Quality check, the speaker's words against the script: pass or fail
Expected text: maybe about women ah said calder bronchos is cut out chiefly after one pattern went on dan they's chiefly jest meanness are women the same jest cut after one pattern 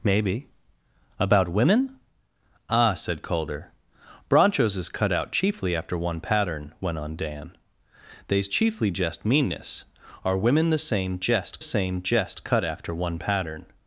fail